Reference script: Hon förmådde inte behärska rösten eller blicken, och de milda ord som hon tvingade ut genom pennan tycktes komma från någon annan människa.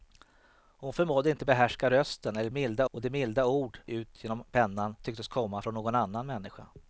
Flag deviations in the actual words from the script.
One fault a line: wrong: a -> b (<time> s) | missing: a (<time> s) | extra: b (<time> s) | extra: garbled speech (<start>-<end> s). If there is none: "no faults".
wrong: blicken -> milda (2.5 s)
missing: som hon tvingade (3.8 s)